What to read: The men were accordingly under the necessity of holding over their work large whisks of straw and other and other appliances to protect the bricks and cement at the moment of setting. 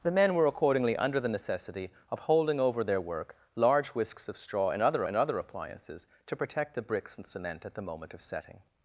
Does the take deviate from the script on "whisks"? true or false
false